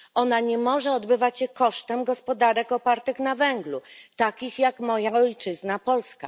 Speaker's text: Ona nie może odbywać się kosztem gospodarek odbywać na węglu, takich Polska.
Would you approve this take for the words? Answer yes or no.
no